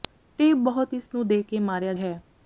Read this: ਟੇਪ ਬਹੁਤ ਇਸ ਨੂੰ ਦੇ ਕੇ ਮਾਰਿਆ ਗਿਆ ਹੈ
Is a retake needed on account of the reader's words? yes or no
yes